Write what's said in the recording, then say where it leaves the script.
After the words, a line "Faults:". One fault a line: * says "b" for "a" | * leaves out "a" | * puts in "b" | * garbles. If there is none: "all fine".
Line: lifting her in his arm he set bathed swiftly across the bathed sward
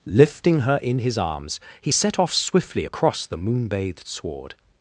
lifting her in his arms he set off swiftly across the moon bathed sward
Faults:
* says "arms" for "arm"
* says "off" for "bathed"
* puts in "moon"